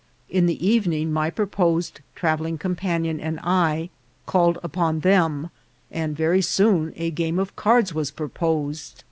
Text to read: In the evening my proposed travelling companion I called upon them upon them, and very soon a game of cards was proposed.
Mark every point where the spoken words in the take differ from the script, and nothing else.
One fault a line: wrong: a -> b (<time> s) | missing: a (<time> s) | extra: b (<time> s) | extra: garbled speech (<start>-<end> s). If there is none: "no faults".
extra: and (3.2 s)
missing: upon them (5.5 s)